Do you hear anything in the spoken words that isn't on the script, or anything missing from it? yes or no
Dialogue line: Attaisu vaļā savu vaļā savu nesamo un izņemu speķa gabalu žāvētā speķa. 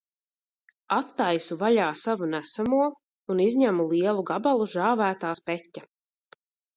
yes